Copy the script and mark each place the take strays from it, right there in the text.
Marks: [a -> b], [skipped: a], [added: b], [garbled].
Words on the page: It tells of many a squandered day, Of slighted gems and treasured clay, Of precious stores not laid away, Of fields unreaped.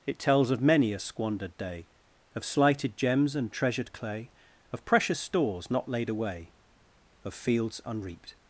It tells of many a squandered day, Of slighted gems and treasured clay, Of precious stores not laid away, Of fields unreaped.